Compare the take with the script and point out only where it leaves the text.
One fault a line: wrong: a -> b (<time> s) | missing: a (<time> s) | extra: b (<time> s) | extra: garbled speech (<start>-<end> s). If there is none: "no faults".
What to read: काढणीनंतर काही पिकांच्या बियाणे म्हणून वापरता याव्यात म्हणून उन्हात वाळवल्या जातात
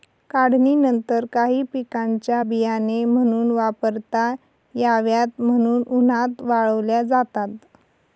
no faults